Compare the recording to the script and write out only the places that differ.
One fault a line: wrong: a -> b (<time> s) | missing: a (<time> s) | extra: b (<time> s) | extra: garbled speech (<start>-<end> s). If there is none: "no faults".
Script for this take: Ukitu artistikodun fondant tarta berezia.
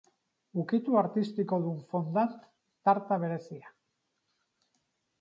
no faults